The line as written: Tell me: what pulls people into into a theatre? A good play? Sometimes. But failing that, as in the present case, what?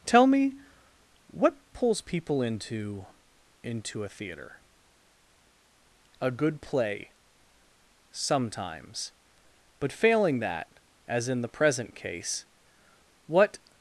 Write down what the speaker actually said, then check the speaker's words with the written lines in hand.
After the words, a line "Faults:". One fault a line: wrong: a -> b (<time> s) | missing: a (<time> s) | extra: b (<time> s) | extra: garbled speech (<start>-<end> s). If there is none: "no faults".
Tell me: what pulls people into into a theatre? A good play? Sometimes. But failing that, as in the present case, what?
Faults:
no faults